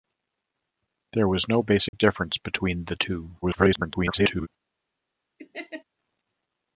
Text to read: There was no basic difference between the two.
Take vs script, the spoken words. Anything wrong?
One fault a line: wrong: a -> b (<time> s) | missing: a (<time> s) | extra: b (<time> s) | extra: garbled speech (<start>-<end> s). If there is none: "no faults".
extra: garbled speech (3.4-4.5 s)